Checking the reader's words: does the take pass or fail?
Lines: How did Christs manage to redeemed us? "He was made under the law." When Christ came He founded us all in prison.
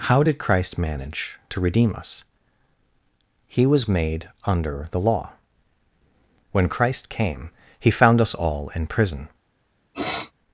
fail